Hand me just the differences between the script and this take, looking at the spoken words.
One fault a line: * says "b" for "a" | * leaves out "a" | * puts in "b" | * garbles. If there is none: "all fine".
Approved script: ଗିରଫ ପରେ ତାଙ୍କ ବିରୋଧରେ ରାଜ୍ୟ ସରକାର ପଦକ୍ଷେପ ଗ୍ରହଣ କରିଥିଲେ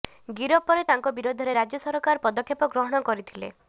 all fine